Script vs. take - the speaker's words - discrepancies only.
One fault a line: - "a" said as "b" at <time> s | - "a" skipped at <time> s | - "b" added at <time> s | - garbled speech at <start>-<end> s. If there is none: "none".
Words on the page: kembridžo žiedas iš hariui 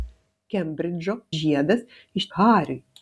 none